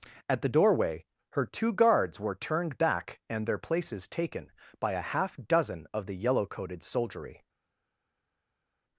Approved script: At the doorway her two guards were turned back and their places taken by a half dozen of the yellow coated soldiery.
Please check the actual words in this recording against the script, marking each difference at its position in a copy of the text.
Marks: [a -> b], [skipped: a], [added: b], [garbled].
At the doorway her two guards were turned back and their places taken by a half dozen of the yellow coated soldiery.